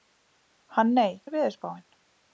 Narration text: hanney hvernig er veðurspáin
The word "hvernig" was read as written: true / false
false